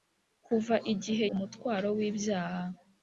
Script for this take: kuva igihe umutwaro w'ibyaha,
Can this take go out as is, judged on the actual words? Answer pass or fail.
pass